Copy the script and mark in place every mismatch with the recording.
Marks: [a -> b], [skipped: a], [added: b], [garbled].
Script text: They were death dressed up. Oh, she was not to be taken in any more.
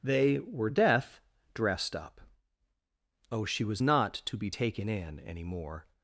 They were death dressed up. Oh, she was not to be taken in any more.